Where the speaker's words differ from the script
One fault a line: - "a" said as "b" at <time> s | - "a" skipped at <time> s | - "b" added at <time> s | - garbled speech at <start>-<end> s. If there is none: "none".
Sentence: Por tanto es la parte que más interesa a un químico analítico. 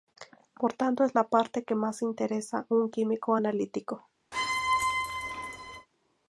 none